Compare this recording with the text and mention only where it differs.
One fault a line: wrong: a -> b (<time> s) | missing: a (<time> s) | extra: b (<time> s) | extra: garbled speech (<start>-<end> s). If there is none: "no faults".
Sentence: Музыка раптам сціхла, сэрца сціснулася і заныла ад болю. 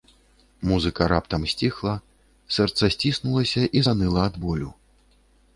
no faults